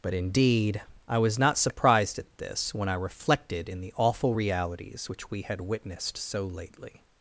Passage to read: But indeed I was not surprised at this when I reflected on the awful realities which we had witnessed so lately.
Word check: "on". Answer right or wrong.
wrong